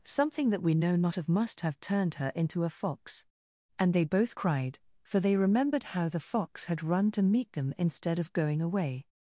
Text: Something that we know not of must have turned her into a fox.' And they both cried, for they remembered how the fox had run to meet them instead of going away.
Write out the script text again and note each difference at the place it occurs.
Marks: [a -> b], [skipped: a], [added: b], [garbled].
Something that we know not of must have turned her into a fox.' And they both cried, for they remembered how the fox had run to meet them instead of going away.